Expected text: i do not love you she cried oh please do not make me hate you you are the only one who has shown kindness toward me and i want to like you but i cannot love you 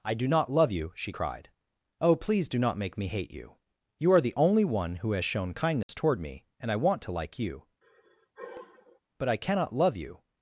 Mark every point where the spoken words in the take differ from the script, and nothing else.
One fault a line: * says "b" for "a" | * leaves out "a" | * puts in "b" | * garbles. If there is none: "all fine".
all fine